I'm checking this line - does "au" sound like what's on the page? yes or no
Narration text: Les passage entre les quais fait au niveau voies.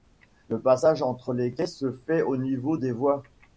yes